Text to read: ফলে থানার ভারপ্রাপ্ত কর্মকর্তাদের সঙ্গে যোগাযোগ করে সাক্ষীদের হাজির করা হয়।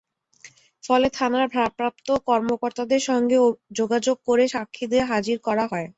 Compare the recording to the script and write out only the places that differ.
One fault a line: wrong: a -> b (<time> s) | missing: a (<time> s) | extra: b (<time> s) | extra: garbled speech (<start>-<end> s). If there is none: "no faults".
no faults